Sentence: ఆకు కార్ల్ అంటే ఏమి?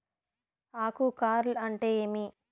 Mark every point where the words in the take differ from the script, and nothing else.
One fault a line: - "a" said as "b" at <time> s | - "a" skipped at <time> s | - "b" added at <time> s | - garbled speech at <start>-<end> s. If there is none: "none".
none